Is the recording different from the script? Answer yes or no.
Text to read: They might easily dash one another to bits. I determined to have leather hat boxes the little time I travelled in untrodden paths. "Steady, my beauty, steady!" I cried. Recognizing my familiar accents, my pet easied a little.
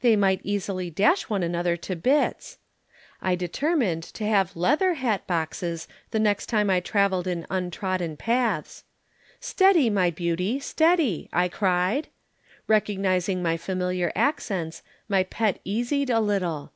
yes